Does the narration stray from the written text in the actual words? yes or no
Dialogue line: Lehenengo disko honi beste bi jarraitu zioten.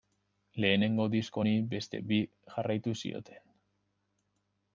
no